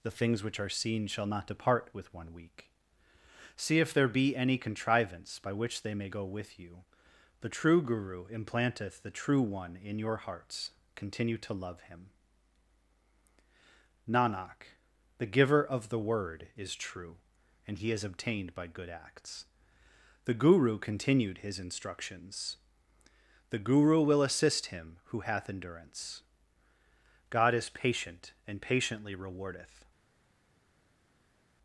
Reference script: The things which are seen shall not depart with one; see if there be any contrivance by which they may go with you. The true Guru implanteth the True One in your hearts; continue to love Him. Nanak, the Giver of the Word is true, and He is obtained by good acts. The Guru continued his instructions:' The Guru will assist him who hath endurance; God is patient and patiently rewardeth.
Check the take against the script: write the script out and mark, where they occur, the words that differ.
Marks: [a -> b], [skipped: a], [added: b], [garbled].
The things which are seen shall not depart with one; [added: week] see if there be any contrivance by which they may go with you. The true Guru implanteth the True One in your hearts; continue to love Him. Nanak, the Giver of the Word is true, and He is obtained by good acts. The Guru continued his instructions:' The Guru will assist him who hath endurance; God is patient and patiently rewardeth.